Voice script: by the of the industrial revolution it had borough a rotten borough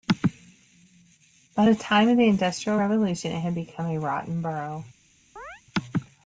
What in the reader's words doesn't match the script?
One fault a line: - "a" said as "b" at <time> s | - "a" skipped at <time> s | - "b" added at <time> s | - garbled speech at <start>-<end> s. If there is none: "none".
- "time" added at 1.7 s
- "borough" said as "become" at 3.5 s